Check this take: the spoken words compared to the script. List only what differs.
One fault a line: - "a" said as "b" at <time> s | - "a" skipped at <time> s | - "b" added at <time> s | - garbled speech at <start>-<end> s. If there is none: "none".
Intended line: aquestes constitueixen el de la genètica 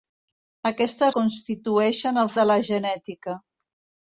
none